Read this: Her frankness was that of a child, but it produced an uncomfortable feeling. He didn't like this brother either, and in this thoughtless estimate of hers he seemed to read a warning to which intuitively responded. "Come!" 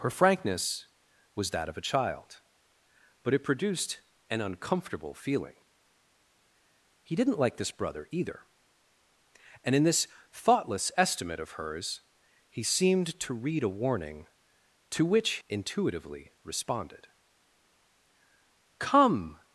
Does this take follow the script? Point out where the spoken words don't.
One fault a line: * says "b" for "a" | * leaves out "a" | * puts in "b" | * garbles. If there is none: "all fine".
all fine